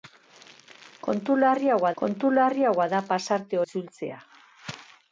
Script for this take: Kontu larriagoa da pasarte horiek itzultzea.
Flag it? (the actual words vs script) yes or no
yes